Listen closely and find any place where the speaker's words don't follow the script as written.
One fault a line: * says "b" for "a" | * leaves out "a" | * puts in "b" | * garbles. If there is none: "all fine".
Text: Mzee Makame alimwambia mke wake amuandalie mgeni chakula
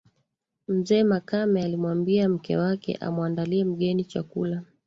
all fine